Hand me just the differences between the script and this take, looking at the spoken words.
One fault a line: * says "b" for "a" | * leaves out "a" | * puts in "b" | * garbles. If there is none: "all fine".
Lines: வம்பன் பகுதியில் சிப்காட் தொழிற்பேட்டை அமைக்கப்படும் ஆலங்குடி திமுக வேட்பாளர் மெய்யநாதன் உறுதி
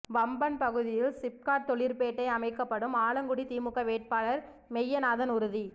all fine